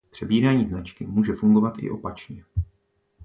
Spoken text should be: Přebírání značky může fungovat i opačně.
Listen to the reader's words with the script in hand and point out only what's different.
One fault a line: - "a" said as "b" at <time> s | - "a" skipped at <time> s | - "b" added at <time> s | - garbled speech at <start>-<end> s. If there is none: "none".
none